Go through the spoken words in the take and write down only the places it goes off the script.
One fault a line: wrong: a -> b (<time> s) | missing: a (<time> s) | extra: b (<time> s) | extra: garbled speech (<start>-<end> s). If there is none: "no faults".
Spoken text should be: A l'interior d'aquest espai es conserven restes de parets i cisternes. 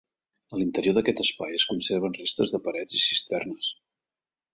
no faults